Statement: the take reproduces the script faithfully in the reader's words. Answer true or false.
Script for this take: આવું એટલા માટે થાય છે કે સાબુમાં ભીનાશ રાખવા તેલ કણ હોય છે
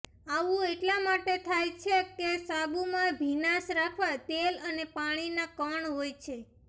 false